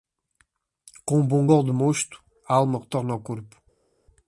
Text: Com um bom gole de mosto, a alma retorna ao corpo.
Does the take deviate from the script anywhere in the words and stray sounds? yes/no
no